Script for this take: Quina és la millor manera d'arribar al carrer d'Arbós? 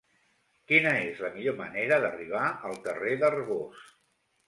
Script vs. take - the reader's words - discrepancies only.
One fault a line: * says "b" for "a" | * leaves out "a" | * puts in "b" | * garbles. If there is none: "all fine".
all fine